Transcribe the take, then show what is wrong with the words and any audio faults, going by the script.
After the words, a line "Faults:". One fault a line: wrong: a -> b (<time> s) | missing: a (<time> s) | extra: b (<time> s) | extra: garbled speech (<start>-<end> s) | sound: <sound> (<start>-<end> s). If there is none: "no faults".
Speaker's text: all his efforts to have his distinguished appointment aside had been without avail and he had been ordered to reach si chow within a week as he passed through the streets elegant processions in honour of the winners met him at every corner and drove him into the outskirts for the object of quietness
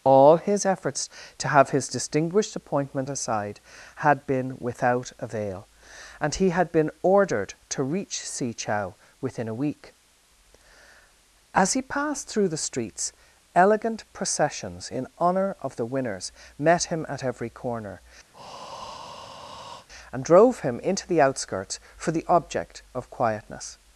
all his efforts to have his distinguished appointment aside had been without avail and he had been ordered to reach si chow within a week as he passed through the streets elegant processions in honour of the winners met him at every corner and drove him into the outskirts for the object of quietness
Faults:
sound: breath (18.3-19.9 s)